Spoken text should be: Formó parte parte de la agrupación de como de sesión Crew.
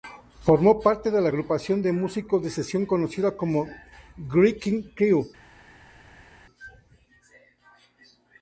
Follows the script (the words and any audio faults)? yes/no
no